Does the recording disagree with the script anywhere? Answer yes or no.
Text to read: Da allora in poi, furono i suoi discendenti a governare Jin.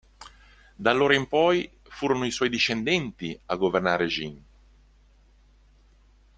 no